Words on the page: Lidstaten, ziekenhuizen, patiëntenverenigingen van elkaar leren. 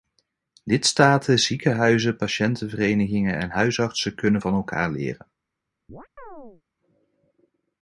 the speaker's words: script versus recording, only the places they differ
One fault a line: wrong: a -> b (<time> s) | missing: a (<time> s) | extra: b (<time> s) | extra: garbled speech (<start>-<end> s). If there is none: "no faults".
extra: en huisartsen kunnen (3.4 s)